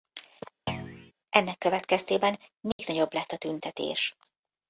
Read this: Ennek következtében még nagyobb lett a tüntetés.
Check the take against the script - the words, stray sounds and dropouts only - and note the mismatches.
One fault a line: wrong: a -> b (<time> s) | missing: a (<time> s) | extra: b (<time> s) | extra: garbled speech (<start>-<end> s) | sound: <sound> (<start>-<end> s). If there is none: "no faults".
sound: thud (0.7-1.1 s)
sound: dropout (2.7-2.8 s)